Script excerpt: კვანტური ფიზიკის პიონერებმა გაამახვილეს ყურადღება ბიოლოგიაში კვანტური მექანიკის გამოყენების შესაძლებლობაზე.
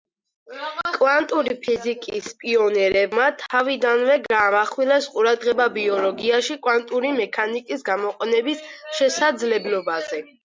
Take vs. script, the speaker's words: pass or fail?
fail